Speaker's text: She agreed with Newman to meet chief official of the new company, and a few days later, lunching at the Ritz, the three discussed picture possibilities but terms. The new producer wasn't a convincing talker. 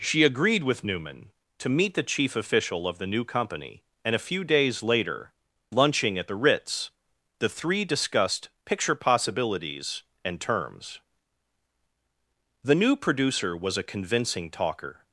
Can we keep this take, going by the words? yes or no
no